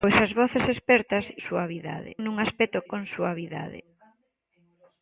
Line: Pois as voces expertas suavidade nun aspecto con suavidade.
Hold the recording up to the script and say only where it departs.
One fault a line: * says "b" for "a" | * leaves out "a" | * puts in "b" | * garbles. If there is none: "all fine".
all fine